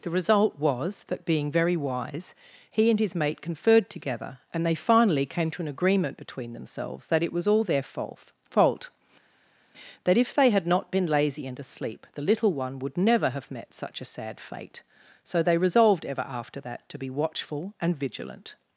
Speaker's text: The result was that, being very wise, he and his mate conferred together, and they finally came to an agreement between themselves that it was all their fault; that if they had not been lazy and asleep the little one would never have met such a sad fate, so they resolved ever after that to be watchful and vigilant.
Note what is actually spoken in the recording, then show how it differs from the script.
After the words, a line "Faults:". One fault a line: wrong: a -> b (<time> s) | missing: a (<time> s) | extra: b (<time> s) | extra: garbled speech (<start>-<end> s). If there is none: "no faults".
The result was that, being very wise, he and his mate conferred together, and they finally came to an agreement between themselves that it was all their fault fault; that if they had not been lazy and asleep the little one would never have met such a sad fate, so they resolved ever after that to be watchful and vigilant.
Faults:
extra: fault (8.4 s)